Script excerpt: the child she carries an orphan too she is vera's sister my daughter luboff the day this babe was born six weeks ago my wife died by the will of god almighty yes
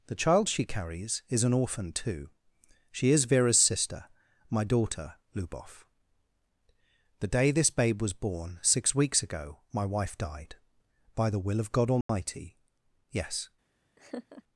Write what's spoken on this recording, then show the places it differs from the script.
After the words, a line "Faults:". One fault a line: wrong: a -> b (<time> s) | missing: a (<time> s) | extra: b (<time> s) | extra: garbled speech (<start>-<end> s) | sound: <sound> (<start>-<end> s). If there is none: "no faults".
the child she carries is an orphan too she is vera's sister my daughter luboff the day this babe was born six weeks ago my wife died by the will of god almighty yes
Faults:
extra: is (1.3 s)
sound: dropout (12.0-12.1 s)
sound: laugh (14.0-14.4 s)